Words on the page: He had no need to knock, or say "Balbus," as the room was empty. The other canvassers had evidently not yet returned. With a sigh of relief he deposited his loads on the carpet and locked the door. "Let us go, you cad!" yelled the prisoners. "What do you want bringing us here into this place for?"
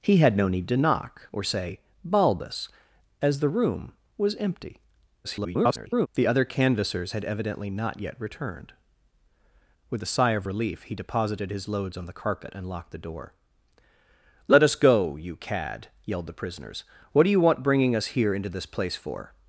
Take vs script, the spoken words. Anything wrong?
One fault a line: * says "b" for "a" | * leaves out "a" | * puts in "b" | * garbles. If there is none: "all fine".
* garbles